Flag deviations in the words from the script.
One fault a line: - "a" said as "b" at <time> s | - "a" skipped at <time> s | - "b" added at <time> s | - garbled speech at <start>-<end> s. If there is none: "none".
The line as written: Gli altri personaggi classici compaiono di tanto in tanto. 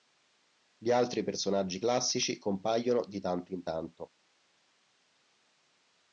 none